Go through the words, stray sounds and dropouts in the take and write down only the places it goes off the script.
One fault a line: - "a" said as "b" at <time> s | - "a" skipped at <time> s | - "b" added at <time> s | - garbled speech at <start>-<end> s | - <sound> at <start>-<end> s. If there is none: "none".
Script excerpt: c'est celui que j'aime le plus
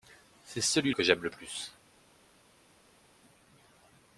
none